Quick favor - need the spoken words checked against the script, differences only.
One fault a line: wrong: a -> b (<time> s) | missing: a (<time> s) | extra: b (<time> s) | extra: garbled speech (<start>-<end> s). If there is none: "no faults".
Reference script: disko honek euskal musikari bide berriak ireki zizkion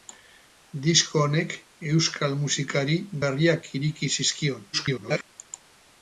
missing: bide (3.0 s)
extra: garbled speech (4.7-5.2 s)